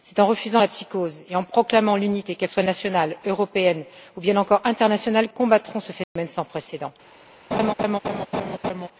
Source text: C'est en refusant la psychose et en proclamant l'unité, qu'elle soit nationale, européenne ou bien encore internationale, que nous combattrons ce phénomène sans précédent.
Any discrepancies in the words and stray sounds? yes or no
yes